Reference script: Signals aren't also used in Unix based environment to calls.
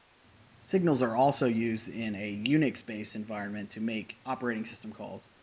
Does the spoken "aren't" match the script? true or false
false